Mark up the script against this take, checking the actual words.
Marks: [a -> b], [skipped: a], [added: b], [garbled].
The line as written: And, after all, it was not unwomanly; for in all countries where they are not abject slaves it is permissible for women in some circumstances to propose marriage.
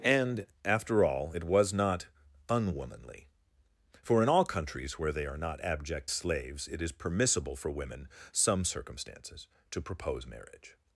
And, after all, it was not unwomanly; for in all countries where they are not abject slaves it is permissible for women [skipped: in] some circumstances to propose marriage.